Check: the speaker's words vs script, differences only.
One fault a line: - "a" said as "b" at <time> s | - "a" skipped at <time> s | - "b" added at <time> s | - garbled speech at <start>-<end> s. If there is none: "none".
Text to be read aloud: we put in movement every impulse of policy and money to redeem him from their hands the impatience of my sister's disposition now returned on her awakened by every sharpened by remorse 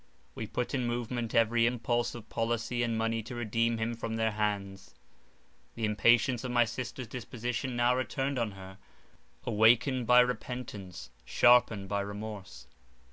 - "every" said as "repentance" at 10.2 s